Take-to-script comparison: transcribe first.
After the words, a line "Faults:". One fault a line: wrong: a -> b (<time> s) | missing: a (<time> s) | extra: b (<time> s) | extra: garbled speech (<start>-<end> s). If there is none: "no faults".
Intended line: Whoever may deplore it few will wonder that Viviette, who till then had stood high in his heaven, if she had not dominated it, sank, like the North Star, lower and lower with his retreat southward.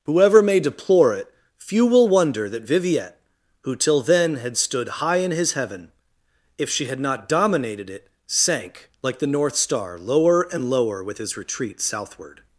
Whoever may deplore it few will wonder that Viviette, who till then had stood high in his heaven, if she had not dominated it, sank, like the North Star, lower and lower with his retreat southward.
Faults:
no faults